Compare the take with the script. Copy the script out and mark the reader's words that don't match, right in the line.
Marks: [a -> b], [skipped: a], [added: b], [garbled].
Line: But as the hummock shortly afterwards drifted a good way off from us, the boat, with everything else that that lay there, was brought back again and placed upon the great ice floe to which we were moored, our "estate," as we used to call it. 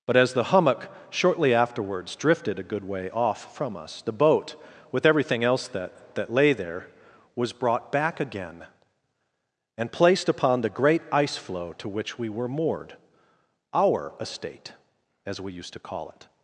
But as the hummock shortly afterwards drifted a good way off from us, the boat, with everything else that that lay there, was brought back again and placed upon the great ice floe to which we were moored, our "estate," as we used to call it.